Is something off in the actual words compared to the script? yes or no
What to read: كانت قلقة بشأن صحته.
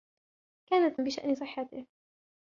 yes